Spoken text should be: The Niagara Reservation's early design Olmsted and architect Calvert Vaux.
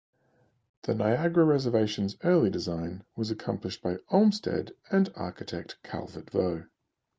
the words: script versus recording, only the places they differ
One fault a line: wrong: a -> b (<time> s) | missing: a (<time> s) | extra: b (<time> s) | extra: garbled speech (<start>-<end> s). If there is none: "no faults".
extra: was accomplished by (3.2 s)